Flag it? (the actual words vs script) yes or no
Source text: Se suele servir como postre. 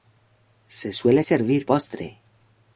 yes